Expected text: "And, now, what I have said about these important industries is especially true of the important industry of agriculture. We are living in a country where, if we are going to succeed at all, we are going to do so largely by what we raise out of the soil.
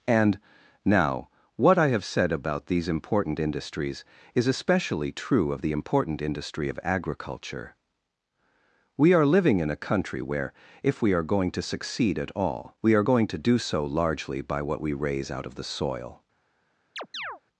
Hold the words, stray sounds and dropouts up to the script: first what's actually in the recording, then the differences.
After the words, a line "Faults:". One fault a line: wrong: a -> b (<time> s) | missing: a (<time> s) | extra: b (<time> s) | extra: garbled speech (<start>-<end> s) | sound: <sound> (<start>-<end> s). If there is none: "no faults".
"And, now, what I have said about these important industries is especially true of the important industry of agriculture. We are living in a country where, if we are going to succeed at all, we are going to do so largely by what we raise out of the soil.
Faults:
sound: chirp (17.0-17.4 s)